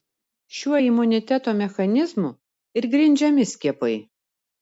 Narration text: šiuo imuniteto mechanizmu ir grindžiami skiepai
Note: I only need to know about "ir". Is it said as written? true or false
true